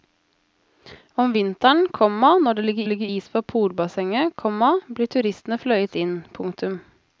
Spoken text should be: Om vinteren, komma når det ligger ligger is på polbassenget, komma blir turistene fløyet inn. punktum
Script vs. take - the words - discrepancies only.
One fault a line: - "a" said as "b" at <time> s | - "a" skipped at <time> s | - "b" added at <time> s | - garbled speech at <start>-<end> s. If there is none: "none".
none